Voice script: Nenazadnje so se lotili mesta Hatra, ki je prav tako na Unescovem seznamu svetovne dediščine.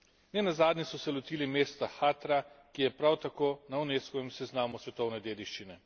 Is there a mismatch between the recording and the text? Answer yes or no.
no